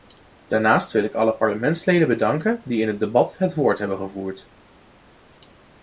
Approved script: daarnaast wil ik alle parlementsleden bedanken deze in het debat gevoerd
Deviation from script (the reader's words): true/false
true